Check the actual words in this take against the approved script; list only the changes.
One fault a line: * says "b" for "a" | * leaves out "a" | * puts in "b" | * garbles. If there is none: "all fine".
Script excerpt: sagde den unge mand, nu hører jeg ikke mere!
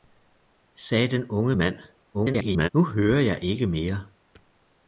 * garbles